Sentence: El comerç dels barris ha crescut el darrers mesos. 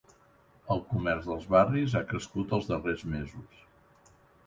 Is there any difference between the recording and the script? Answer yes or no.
yes